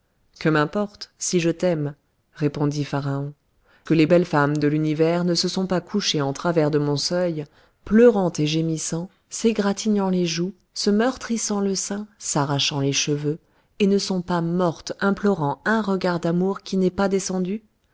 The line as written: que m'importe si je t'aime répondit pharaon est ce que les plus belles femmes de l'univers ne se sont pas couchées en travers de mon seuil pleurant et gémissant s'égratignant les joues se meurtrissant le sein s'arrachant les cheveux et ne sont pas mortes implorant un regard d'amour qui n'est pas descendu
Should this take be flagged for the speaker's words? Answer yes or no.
yes